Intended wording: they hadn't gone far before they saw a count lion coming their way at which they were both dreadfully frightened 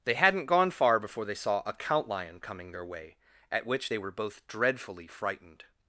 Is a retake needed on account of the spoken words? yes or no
no